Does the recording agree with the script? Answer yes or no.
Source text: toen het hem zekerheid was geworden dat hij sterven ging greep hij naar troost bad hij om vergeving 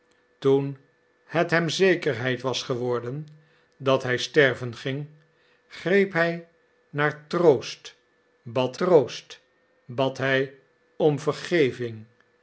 no